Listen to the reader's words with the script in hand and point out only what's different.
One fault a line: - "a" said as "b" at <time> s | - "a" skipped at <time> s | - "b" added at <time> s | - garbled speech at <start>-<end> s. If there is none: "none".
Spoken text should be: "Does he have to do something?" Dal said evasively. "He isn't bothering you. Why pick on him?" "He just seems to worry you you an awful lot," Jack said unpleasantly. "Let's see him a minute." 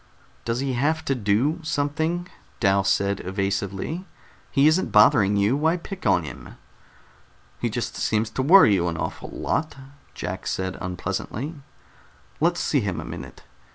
- "you" skipped at 8.9 s